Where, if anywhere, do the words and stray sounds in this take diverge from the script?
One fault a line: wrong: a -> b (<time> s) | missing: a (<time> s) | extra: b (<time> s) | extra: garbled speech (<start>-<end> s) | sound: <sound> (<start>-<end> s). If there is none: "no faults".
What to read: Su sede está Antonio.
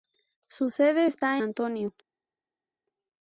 no faults